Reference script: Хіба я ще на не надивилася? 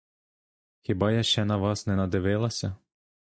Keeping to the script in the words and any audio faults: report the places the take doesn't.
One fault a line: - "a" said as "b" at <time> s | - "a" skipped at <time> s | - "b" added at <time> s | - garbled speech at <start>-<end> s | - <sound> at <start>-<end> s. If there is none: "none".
- "вас" added at 1.6 s